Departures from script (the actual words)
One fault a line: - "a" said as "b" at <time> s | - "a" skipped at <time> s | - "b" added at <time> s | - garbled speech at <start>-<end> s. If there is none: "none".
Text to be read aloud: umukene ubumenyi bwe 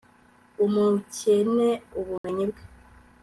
none